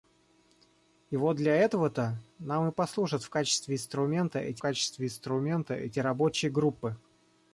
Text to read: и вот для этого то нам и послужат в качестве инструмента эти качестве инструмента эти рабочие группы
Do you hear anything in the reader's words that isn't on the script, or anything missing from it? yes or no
no